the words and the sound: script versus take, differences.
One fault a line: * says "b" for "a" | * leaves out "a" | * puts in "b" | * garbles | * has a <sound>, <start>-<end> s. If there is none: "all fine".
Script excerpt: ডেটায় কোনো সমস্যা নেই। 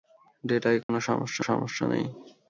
* has a dropout, 0.8-0.9 s
* puts in "সমস্যা"